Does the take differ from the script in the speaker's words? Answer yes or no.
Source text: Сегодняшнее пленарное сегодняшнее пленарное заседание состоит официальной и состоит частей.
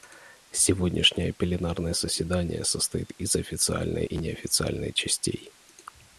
yes